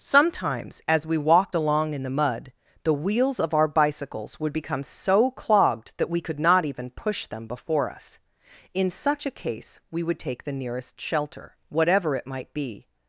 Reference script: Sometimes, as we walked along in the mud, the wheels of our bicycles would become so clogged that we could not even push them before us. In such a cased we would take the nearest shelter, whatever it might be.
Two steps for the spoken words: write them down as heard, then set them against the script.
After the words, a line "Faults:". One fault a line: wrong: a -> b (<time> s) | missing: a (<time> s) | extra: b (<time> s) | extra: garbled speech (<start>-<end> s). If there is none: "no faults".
Sometimes, as we walked along in the mud, the wheels of our bicycles would become so clogged that we could not even push them before us. In such a case we would take the nearest shelter, whatever it might be.
Faults:
wrong: cased -> case (9.3 s)